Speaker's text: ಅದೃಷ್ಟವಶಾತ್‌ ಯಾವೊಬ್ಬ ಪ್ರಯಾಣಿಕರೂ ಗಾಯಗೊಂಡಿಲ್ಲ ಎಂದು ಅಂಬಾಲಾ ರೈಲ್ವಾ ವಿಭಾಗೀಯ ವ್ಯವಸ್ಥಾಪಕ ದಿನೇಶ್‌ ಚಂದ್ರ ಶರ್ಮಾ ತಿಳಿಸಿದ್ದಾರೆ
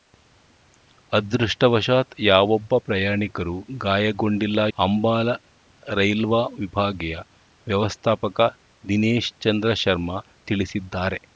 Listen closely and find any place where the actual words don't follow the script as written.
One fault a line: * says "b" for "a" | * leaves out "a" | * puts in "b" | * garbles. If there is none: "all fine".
* leaves out "ಎಂದು"